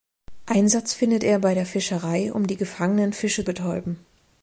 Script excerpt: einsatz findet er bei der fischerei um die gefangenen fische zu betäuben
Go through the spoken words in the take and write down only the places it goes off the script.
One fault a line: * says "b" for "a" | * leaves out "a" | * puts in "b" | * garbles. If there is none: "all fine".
* leaves out "zu"